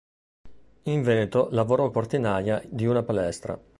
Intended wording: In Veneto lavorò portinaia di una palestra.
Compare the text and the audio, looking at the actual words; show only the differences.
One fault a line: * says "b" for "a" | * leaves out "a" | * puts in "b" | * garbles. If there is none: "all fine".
all fine